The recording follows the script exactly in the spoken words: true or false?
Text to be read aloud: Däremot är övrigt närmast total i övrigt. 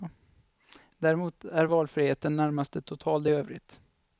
false